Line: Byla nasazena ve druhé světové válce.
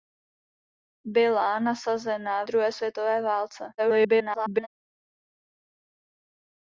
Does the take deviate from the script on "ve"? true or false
true